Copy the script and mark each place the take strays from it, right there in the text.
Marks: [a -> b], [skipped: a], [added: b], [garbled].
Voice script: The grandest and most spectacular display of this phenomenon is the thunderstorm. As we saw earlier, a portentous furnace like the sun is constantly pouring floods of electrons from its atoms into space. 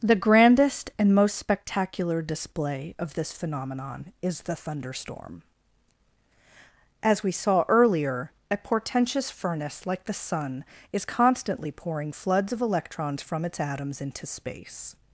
The grandest and most spectacular display of this phenomenon is the thunderstorm. As we saw earlier, a portentous furnace like the sun is constantly pouring floods of electrons from its atoms into space.